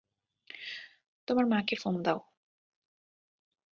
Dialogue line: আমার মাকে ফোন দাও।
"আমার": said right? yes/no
no